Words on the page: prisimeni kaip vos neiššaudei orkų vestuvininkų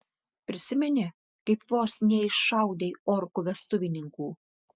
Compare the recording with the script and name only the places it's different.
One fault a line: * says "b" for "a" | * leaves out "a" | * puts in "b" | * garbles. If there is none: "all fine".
all fine